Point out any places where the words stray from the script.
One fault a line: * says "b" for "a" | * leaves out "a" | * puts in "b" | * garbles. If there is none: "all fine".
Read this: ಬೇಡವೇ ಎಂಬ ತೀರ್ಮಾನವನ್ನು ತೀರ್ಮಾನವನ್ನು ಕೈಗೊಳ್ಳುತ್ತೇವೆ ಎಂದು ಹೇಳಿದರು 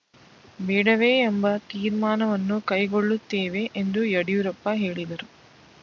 * leaves out "ತೀರ್ಮಾನವನ್ನು"
* puts in "ಯಡಿಯೂರಪ್ಪ"